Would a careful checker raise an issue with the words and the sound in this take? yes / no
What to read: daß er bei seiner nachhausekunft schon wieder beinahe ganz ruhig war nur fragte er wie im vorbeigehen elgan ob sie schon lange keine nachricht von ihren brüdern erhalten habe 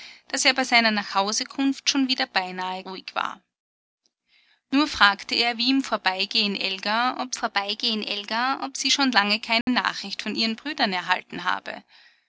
yes